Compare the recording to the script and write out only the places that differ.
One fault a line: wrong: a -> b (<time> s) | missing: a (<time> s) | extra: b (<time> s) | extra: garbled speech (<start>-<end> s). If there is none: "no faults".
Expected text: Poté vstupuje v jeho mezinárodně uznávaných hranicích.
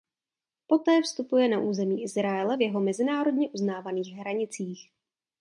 extra: na území Izraele (1.5 s)